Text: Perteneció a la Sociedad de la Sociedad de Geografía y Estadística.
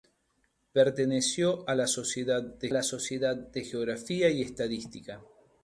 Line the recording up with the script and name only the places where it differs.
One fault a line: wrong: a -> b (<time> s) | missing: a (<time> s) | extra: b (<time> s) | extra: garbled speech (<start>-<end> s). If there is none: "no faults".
no faults